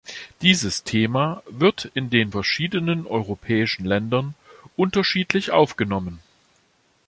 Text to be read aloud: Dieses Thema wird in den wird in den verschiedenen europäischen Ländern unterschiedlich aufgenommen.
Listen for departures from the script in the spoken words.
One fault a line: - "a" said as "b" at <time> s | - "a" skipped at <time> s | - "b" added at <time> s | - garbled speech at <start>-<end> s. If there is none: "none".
- "wird in den" skipped at 2.3 s